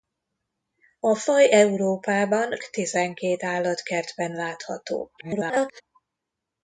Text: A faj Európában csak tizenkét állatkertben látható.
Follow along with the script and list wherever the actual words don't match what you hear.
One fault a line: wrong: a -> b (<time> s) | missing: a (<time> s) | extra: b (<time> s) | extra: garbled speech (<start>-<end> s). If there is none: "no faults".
missing: csak (2.5 s)
extra: garbled speech (5.2-5.8 s)